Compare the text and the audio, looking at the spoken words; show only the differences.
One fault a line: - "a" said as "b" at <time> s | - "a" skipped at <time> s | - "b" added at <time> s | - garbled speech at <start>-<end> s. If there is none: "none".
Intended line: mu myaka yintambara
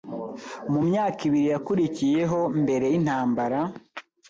- "ibiri yakurikiyeho mbere" added at 1.3 s